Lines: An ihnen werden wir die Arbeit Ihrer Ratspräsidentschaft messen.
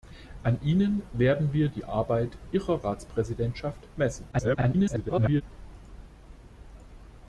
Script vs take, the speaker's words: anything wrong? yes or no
yes